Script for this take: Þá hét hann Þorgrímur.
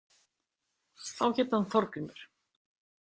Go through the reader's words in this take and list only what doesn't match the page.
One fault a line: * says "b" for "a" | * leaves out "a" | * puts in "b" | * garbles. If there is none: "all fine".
all fine